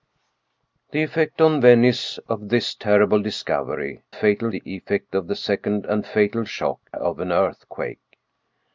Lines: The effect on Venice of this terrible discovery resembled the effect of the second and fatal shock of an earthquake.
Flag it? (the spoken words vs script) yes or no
yes